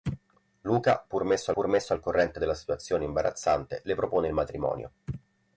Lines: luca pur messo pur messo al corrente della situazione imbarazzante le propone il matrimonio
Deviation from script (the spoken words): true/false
false